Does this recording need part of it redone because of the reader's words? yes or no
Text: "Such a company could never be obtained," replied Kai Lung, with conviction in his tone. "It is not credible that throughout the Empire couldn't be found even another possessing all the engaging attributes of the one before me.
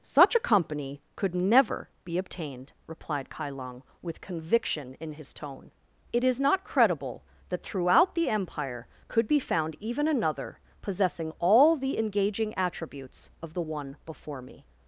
yes